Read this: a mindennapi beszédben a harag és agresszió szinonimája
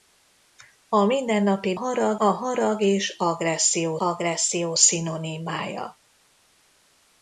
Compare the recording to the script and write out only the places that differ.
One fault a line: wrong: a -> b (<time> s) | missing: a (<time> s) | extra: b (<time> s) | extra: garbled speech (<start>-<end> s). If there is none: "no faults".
wrong: beszédben -> harag (1.7 s)
extra: agresszió (4.0 s)